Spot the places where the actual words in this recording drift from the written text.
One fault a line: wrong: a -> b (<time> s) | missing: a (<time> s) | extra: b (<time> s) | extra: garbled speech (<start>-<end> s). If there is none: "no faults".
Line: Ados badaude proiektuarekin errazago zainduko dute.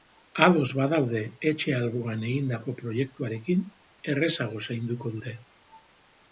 extra: etxe alboan egindako (1.5 s)